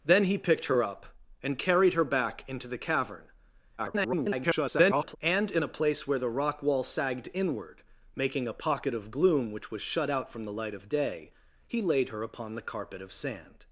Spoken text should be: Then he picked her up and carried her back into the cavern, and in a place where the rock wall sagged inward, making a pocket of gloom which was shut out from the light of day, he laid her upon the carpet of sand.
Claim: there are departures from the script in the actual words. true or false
true